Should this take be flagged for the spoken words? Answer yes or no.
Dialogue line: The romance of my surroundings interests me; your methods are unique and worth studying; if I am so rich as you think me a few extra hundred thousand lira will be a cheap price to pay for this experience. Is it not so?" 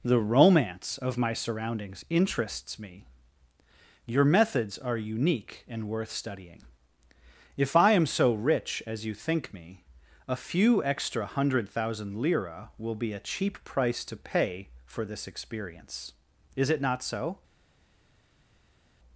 no